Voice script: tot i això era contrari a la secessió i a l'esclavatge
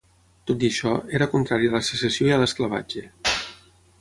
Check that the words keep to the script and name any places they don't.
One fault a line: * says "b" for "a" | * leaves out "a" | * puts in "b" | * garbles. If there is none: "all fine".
all fine